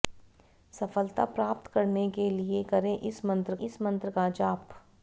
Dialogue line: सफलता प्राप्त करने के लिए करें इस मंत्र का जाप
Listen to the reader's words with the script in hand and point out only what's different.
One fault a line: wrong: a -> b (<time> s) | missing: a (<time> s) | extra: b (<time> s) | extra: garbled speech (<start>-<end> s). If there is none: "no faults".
extra: इस मंत्र (3.6 s)